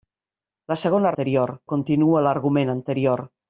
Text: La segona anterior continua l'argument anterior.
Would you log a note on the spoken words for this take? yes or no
no